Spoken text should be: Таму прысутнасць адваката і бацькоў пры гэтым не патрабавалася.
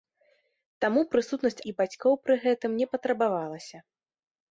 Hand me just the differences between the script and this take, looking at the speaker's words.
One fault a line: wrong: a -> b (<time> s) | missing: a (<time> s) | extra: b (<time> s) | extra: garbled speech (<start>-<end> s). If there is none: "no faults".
missing: адваката (1.6 s)